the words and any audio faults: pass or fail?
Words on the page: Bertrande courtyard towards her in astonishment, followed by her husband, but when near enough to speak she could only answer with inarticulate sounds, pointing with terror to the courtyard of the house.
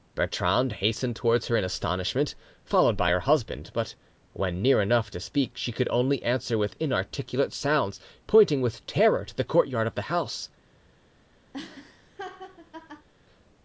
fail